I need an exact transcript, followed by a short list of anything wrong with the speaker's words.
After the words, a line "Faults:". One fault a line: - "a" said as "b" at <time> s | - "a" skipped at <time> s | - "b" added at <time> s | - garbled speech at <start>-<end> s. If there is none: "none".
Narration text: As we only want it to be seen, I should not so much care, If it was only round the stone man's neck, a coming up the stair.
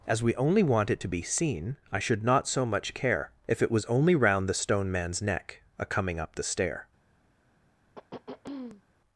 As we only want it to be seen, I should not so much care, If it was only round the stone man's neck, a coming up the stair.
Faults:
none